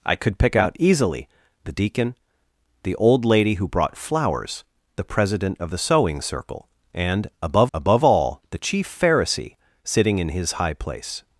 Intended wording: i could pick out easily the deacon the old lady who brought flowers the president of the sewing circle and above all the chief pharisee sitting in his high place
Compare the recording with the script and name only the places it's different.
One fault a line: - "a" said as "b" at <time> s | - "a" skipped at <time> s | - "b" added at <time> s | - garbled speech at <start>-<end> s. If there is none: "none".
- "above" added at 7.7 s